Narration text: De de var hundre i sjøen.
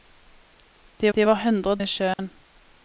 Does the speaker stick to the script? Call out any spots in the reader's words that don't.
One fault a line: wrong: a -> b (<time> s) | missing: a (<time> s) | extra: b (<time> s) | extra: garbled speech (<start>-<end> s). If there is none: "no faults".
no faults